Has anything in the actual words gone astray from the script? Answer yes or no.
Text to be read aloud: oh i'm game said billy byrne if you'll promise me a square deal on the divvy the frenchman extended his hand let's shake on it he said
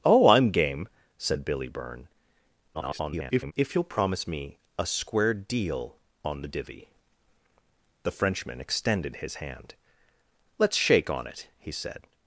yes